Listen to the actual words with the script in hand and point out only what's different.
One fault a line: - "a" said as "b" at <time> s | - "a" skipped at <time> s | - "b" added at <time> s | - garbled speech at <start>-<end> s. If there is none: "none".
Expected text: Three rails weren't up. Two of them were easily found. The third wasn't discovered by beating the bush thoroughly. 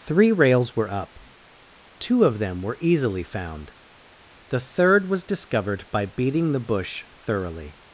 - "weren't" said as "were" at 0.8 s
- "wasn't" said as "was" at 5.1 s